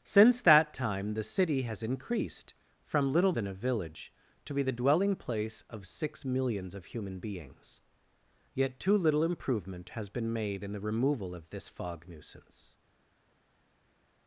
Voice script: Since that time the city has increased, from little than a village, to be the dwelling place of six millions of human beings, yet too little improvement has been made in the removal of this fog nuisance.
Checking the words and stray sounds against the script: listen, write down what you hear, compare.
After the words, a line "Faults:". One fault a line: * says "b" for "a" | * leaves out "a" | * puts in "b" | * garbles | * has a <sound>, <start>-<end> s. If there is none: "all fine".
Since that time the city has increased, from little than a village, to be the dwelling place of six millions of human beings, yet too little improvement has been made in the removal of this fog nuisance.
Faults:
all fine